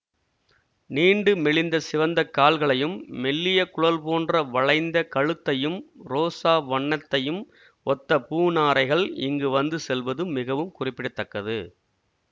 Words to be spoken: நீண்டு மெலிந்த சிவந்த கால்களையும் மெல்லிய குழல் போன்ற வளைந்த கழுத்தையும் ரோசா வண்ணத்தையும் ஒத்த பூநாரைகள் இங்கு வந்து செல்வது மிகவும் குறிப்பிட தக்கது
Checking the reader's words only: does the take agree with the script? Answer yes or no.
yes